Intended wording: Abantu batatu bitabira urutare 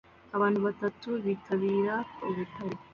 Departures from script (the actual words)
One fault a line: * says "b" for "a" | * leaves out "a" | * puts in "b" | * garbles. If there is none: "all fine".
all fine